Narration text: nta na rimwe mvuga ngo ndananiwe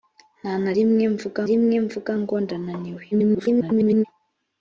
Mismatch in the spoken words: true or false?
true